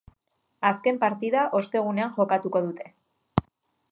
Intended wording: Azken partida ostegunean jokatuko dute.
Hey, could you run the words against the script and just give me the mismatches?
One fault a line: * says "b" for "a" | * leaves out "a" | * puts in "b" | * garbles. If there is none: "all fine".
all fine